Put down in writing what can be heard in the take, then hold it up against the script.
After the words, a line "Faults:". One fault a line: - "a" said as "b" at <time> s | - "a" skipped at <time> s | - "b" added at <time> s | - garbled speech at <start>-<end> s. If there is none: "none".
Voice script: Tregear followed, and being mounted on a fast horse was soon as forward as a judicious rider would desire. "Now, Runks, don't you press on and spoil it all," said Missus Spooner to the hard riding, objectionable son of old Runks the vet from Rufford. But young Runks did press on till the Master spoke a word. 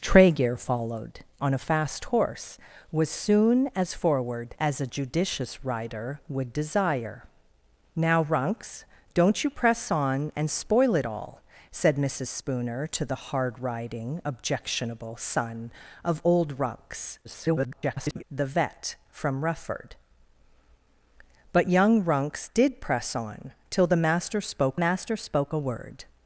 Tregear followed, on a fast horse was soon as forward as a judicious rider would desire. "Now, Runks, don't you press on and spoil it all," said Missus Spooner to the hard riding, objectionable son of old Runks [garbled] the vet from Rufford. But young Runks did press on till the Master spoke Master spoke a word.
Faults:
- "and being mounted" skipped at 1.2 s
- garbled speech at 17.2-18.2 s
- "Master spoke" added at 24.7 s